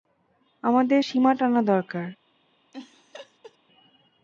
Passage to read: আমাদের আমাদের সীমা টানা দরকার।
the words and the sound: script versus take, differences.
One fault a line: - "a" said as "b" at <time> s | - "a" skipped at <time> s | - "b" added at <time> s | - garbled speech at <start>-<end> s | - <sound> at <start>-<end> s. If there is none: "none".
- "আমাদের" skipped at 1.0 s
- laugh at 2.7-3.6 s